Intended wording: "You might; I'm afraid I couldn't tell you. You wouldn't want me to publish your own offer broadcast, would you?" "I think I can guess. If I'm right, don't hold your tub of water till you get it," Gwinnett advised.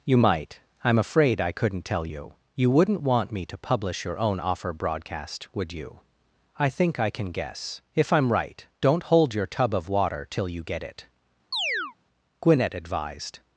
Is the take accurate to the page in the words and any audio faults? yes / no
no